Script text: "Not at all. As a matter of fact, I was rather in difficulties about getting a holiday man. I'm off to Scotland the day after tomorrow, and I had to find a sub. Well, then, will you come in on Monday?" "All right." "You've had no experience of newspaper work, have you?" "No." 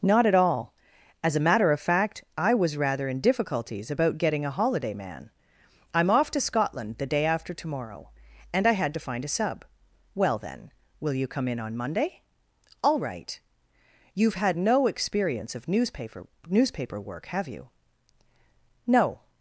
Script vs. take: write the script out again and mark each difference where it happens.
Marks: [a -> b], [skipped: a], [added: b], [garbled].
"Not at all. As a matter of fact, I was rather in difficulties about getting a holiday man. I'm off to Scotland the day after tomorrow, and I had to find a sub. Well, then, will you come in on Monday?" "All right." "You've had no experience of newspaper [added: newspaper] work, have you?" "No."